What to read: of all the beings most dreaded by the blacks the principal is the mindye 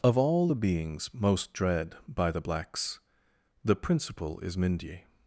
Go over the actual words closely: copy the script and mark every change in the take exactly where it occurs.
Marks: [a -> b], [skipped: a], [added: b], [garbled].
of all the beings most [dreaded -> dread] by the blacks the principal is [skipped: the] mindye